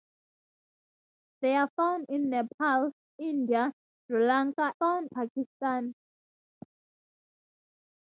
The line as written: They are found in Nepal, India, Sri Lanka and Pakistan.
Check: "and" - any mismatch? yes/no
yes